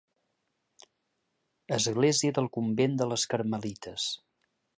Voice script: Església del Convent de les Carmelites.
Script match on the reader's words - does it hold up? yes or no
yes